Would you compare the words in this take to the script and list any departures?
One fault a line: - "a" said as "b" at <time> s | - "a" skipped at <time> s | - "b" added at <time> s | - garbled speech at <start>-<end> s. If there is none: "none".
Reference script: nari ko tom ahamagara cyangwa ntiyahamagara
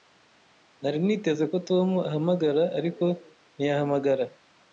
- "niteze" added at 1.1 s
- "cyangwa" said as "ariko" at 2.8 s